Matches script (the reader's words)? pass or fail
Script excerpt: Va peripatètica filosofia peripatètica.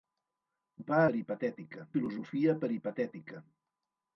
pass